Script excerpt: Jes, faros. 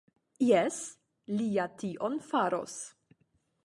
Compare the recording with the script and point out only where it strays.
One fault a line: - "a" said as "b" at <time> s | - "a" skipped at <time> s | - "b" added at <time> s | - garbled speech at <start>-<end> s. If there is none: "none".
- "li ja tion" added at 1.4 s